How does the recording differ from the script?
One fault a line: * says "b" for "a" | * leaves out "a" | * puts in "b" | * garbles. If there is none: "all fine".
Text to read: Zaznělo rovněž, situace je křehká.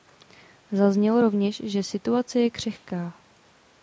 * puts in "že"